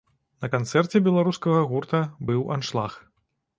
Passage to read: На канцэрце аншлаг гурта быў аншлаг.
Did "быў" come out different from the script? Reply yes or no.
no